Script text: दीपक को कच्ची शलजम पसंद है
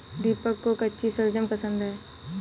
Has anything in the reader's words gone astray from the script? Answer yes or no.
no